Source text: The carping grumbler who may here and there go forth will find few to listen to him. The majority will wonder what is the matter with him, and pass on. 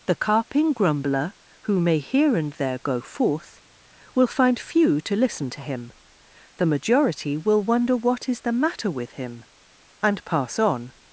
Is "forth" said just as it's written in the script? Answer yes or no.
yes